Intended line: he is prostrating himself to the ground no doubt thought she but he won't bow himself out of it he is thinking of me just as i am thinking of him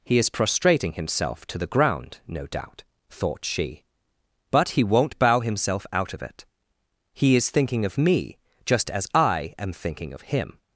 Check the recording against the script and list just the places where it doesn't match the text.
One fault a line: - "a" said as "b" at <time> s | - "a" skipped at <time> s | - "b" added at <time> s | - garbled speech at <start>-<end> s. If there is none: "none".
none